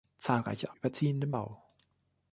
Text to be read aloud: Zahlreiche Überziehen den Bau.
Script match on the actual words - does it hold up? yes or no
yes